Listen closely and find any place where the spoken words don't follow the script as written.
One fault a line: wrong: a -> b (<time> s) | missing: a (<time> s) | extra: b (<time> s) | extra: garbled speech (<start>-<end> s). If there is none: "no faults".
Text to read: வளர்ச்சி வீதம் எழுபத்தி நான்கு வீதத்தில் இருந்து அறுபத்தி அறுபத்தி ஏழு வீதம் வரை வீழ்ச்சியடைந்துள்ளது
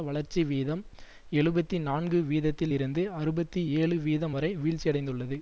missing: அறுபத்தி (3.6 s)